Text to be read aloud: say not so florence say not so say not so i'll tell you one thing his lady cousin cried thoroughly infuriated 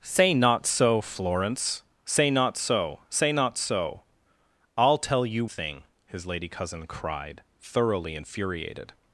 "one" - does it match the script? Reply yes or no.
no